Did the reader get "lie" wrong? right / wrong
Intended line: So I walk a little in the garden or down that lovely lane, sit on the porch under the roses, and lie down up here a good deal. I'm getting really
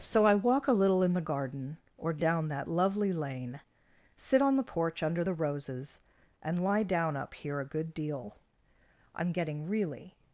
right